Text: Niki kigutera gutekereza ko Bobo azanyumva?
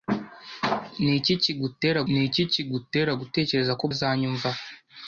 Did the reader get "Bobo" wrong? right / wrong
wrong